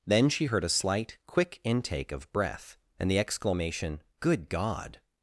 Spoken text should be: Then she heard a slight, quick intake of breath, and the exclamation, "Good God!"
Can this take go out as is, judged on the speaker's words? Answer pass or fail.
pass